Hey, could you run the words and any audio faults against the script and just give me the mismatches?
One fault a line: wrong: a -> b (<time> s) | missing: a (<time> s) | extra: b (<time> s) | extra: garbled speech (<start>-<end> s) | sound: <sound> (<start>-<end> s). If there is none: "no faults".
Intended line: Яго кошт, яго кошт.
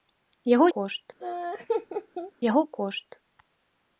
sound: laugh (1.2-2.3 s)